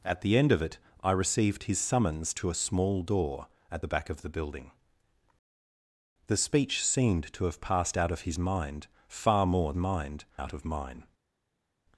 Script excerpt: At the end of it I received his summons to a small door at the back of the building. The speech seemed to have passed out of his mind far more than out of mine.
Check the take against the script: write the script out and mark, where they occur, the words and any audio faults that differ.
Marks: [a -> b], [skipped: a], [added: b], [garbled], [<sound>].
At the end of it I received his summons to a small door at the back of the building. The speech seemed to have passed out of his mind far more [than -> mind] out of mine.